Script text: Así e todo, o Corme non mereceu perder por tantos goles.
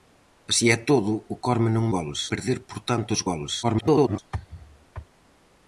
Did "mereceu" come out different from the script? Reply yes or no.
yes